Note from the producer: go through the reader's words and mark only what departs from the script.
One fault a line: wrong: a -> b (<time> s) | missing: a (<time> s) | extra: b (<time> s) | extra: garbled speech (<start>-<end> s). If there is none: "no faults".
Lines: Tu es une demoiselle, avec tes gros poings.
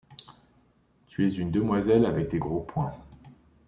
no faults